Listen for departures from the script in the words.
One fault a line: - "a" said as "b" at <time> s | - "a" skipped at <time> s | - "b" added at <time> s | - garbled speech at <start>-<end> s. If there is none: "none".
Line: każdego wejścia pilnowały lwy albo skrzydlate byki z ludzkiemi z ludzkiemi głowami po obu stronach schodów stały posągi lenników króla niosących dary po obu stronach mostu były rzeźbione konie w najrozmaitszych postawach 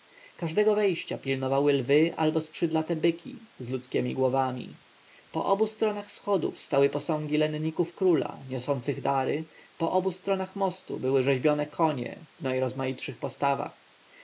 - "z ludzkiemi" skipped at 4.2 s